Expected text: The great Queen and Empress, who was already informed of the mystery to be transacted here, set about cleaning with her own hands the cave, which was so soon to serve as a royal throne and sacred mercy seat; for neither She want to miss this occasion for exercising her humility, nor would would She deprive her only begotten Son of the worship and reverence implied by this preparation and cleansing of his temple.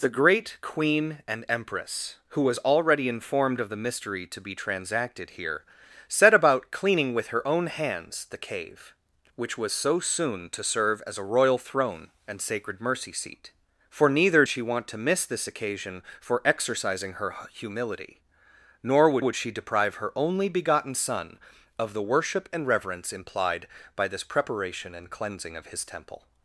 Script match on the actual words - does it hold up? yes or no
yes